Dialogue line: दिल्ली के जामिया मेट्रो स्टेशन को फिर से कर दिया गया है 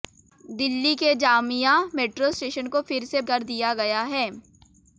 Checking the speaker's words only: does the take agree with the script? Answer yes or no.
yes